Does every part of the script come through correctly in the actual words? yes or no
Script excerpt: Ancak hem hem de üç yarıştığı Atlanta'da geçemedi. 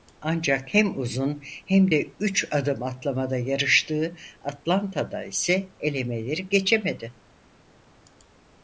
no